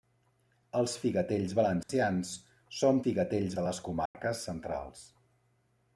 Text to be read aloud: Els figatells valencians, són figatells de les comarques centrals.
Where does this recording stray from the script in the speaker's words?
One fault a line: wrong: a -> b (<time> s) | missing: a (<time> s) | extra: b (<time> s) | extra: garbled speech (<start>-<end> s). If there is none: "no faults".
no faults